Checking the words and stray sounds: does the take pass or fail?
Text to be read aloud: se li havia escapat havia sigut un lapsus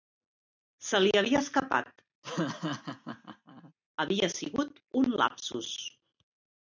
fail